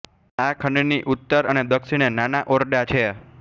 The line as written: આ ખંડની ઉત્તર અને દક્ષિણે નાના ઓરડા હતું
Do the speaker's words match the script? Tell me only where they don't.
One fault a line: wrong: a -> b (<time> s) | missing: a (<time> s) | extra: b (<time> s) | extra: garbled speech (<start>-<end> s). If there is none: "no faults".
wrong: હતું -> છે (2.8 s)